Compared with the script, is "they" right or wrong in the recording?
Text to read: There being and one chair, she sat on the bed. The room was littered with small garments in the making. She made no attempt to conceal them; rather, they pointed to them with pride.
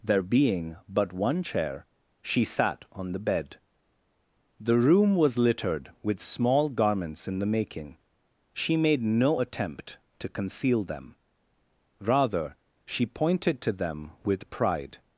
wrong